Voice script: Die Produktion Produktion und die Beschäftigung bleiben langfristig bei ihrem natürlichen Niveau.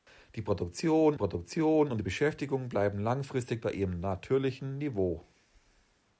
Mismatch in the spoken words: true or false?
false